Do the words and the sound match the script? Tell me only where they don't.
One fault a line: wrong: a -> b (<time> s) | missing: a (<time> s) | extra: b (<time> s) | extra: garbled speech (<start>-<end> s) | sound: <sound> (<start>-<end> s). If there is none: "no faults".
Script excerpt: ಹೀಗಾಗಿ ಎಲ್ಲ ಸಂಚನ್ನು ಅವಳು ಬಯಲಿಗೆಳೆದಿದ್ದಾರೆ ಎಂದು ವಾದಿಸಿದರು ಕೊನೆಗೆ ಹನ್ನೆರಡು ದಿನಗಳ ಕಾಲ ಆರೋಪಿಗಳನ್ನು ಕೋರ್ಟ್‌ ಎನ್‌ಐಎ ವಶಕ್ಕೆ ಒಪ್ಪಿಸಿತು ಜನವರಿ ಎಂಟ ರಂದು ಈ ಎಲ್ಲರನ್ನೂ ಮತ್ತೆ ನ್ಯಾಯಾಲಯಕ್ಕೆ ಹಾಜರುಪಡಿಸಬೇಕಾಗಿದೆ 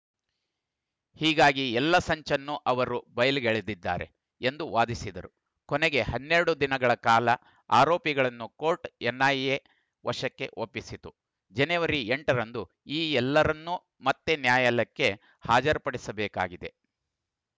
wrong: ಅವಳು -> ಅವರು (2.6 s)